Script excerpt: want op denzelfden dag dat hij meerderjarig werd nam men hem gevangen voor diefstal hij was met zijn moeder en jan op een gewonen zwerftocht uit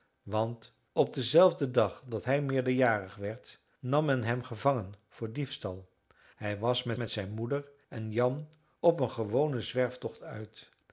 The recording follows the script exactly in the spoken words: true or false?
false